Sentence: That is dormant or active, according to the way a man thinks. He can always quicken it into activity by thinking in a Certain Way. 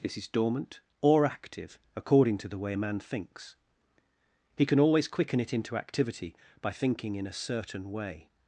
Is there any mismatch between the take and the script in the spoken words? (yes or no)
yes